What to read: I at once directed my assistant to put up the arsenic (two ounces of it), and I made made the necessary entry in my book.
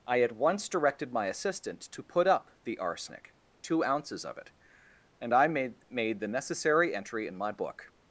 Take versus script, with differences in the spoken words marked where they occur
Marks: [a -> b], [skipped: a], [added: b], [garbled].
I at once directed my assistant to put up the arsenic (two ounces of it), and I made made the necessary entry in my book.